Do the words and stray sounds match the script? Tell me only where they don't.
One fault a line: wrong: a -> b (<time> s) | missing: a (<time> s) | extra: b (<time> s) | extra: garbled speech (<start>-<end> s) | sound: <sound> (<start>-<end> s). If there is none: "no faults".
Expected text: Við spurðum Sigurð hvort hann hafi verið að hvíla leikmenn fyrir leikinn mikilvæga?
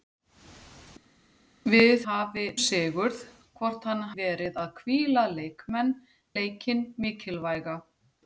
wrong: spurðum -> hafi (2.1 s)
missing: hafi (4.0 s)
missing: fyrir (5.9 s)